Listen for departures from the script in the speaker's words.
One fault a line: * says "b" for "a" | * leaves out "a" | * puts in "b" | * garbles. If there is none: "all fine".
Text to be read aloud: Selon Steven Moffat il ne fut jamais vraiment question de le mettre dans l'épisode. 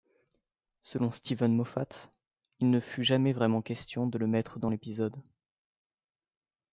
all fine